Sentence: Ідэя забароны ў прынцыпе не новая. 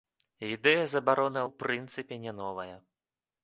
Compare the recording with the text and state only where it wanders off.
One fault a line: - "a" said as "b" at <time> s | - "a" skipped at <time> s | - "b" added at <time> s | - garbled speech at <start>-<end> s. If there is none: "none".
none